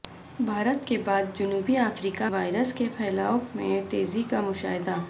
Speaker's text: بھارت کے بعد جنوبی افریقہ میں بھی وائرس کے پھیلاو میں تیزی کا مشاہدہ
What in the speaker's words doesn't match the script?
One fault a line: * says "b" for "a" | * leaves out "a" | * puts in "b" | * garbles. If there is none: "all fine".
* leaves out "میں بھی"